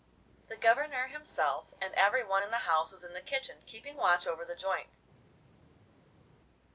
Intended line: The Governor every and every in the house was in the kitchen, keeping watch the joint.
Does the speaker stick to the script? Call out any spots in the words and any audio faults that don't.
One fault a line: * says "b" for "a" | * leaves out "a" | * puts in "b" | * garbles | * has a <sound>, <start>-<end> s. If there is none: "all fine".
* says "himself" for "every"
* puts in "one"
* puts in "over"